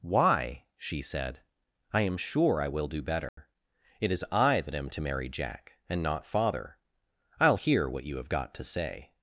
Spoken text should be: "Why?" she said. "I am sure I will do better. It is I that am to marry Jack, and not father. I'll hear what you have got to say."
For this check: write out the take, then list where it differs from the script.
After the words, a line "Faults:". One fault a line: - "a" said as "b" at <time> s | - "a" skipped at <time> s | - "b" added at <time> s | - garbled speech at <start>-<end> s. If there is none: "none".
"Why?" she said. "I am sure I will do better. It is I that am to marry Jack, and not father. I'll hear what you have got to say."
Faults:
none